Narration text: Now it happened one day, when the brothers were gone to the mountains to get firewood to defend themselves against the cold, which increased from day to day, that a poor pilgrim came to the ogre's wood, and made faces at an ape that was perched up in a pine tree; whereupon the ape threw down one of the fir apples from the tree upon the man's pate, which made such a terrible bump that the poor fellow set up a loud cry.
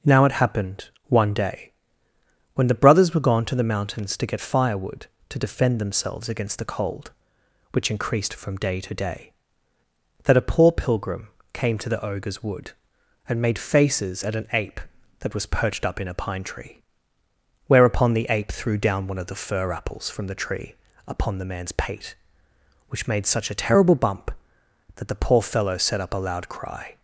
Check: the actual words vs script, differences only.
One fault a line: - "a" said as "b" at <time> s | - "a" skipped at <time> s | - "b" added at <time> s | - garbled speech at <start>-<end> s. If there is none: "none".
none